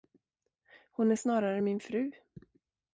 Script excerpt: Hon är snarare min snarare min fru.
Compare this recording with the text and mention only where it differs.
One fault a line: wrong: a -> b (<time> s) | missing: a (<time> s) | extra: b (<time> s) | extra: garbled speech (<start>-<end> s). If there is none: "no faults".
missing: snarare min (1.8 s)